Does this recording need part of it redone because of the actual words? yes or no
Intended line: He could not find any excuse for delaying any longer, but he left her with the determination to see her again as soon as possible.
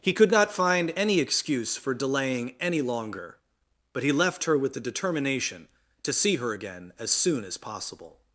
no